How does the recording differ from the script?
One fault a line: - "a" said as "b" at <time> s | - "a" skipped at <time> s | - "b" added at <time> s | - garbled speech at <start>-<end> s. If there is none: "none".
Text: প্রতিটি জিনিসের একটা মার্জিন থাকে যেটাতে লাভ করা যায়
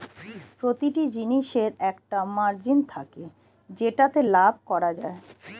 none